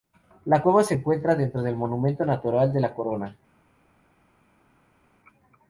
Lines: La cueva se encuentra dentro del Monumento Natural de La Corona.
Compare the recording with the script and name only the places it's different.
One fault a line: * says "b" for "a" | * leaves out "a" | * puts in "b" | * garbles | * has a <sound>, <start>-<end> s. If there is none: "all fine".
all fine